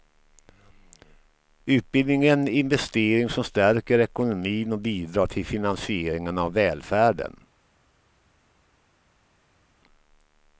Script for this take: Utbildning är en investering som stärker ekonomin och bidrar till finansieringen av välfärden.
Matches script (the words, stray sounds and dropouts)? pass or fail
pass